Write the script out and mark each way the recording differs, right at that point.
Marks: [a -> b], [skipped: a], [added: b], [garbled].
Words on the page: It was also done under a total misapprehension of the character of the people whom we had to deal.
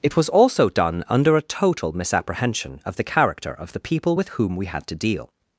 It was also done under a total misapprehension of the character of the people [added: with] whom we had to deal.